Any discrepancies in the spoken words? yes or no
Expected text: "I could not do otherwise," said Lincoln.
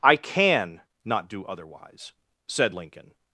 yes